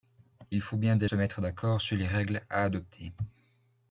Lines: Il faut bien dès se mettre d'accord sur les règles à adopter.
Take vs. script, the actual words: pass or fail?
pass